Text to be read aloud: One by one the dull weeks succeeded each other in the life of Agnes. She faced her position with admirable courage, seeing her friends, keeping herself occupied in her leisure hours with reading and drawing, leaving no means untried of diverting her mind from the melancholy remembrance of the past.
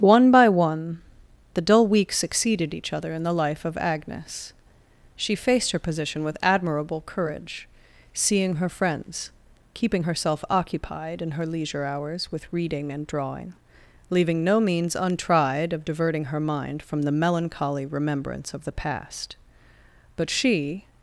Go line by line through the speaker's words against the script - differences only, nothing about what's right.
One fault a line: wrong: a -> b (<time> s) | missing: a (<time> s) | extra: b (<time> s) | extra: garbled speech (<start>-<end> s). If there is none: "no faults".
extra: But she (20.1 s)